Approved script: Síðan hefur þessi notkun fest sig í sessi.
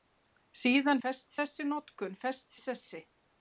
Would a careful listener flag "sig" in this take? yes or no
yes